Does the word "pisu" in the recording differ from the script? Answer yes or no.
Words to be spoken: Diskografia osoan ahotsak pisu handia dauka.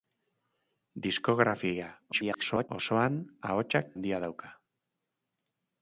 yes